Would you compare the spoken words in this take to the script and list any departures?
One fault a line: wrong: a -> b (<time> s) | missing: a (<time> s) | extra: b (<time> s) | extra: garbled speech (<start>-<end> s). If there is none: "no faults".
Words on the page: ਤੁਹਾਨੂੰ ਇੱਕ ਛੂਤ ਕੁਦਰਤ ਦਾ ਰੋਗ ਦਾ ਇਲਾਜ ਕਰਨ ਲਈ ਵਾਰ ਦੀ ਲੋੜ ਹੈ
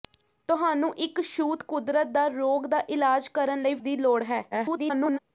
missing: ਵਾਰ (3.7 s)
extra: garbled speech (4.5-5.2 s)